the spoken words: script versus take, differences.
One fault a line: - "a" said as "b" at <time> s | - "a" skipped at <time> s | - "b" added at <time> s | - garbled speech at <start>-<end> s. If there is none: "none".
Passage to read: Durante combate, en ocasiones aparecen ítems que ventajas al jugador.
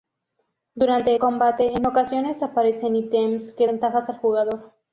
none